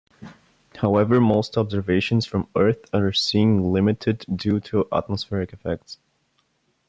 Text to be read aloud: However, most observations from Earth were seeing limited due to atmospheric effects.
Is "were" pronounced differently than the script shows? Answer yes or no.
yes